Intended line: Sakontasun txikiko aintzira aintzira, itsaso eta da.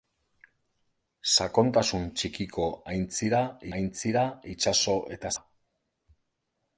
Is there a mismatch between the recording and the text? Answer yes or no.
no